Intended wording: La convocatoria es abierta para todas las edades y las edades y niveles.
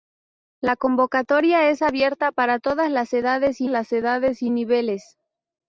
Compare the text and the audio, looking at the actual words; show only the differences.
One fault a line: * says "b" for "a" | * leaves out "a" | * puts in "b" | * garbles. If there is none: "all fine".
all fine